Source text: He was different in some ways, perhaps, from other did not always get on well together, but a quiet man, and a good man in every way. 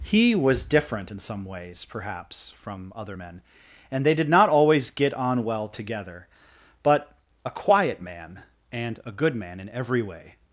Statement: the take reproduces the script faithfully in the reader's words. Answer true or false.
false